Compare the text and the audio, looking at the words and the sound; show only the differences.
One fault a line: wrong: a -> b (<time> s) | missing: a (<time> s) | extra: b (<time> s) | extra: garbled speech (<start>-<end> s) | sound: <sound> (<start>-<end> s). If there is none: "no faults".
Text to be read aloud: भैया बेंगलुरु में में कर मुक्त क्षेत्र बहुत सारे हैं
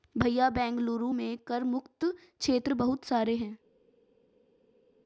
missing: में (1.4 s)